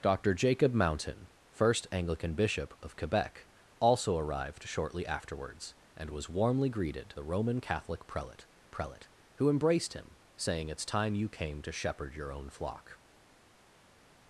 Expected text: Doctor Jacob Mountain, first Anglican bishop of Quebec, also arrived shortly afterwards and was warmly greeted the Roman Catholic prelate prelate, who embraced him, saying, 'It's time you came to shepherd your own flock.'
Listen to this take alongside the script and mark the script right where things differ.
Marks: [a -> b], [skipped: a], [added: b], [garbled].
Doctor Jacob Mountain, first Anglican bishop of Quebec, also arrived shortly afterwards and was warmly greeted the Roman Catholic prelate prelate, who embraced him, saying, 'It's time you came to shepherd your own flock.'